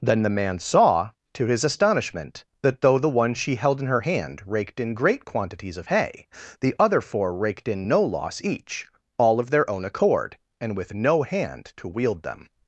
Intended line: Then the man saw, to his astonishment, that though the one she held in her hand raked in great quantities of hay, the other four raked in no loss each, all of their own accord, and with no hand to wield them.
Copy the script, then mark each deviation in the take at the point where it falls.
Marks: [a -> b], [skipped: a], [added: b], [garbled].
Then the man saw, to his astonishment, that though the one she held in her hand raked in great quantities of hay, the other four raked in no loss each, all of their own accord, and with no hand to wield them.